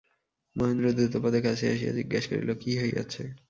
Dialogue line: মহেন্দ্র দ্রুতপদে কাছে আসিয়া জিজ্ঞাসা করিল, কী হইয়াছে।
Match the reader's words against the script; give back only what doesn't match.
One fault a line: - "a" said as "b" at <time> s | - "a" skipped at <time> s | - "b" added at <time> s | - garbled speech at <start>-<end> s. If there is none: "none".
none